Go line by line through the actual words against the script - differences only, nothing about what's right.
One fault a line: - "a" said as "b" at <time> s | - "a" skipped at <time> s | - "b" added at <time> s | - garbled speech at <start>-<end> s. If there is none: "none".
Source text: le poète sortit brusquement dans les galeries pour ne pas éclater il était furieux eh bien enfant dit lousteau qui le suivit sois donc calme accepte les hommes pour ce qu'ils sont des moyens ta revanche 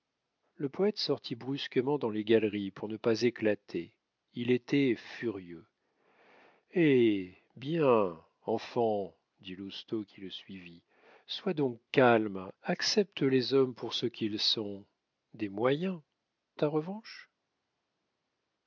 none